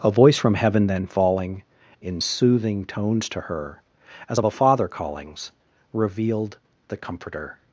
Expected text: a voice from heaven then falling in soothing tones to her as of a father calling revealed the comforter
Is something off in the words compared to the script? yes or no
yes